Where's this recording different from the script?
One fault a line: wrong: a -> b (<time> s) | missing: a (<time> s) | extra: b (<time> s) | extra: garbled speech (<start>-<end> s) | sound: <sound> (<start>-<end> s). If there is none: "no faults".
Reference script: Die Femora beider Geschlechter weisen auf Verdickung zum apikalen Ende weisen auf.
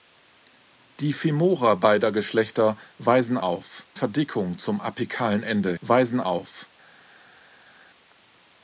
no faults